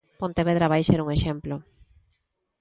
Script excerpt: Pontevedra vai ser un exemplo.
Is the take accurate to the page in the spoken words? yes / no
yes